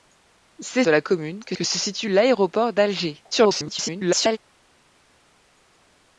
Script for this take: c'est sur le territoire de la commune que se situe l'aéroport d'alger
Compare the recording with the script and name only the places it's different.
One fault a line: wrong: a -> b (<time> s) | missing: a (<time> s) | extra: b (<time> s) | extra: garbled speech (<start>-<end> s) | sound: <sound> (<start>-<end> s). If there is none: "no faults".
missing: sur le territoire (0.8 s)
extra: que (1.5 s)
extra: garbled speech (3.3-4.4 s)